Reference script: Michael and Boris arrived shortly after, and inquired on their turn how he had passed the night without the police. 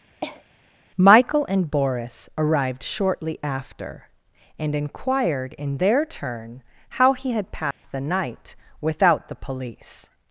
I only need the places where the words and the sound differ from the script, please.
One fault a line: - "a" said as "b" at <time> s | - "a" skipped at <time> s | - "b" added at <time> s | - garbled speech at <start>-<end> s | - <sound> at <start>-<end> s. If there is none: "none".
- cough at 0.2-0.4 s
- "on" said as "in" at 5.6 s
- dropout at 7.7-7.8 s